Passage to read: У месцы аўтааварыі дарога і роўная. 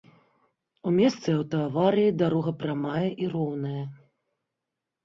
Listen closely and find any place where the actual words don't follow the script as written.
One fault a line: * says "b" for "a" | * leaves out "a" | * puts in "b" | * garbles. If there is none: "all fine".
* puts in "прамая"